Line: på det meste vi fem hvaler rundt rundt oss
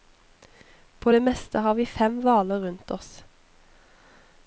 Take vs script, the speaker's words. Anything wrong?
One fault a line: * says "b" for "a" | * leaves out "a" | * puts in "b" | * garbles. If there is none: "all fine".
* puts in "har"
* leaves out "rundt"